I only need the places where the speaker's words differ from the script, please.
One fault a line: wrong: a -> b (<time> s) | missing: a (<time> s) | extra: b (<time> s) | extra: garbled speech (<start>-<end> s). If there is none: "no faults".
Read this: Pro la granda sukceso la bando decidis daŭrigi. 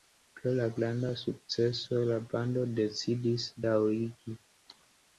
no faults